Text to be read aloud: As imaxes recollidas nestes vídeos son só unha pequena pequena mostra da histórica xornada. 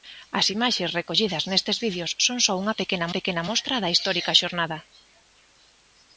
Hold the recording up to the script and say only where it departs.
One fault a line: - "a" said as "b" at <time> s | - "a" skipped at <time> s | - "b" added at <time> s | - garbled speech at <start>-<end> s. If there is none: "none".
none